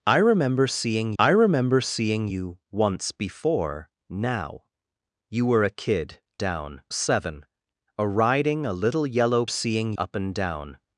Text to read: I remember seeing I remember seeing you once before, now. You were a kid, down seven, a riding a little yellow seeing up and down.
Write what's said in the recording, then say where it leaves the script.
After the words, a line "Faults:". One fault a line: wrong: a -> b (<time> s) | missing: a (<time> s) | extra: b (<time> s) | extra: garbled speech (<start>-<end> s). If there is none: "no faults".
I remember seeing I remember seeing you once before, now. You were a kid, down seven, a riding a little yellow seeing up and down.
Faults:
no faults